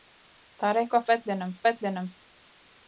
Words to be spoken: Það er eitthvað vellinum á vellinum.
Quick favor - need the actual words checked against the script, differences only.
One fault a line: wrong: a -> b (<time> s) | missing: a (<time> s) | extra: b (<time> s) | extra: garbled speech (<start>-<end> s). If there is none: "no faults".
no faults